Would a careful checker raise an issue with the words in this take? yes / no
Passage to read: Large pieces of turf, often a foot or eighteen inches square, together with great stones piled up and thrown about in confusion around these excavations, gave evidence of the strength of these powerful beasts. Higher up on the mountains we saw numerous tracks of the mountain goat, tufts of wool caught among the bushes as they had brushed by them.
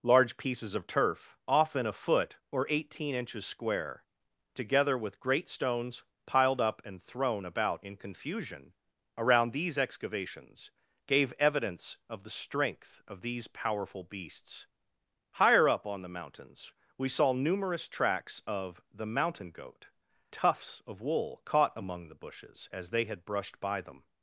no